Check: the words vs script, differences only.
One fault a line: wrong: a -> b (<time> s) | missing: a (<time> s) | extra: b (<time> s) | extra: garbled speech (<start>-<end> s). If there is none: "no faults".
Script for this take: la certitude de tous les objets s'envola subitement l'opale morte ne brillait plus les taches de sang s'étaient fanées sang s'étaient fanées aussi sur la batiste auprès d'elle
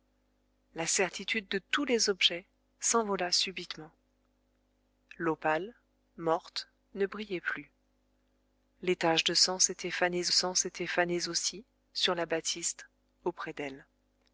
no faults